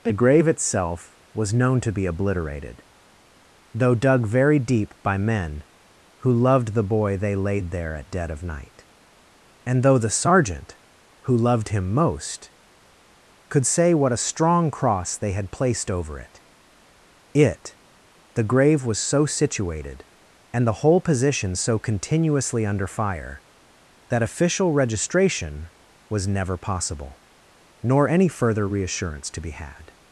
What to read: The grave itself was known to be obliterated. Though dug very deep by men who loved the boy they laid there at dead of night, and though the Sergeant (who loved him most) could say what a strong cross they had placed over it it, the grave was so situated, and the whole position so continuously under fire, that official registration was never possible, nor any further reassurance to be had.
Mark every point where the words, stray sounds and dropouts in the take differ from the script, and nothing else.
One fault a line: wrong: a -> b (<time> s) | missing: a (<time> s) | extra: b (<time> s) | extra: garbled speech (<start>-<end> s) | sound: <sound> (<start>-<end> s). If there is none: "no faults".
no faults